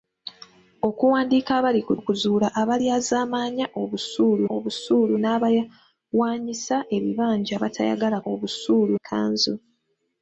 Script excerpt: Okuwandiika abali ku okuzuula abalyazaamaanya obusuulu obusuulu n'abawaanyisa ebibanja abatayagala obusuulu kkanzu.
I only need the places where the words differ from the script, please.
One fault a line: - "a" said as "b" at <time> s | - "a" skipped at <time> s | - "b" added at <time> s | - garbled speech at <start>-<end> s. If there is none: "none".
none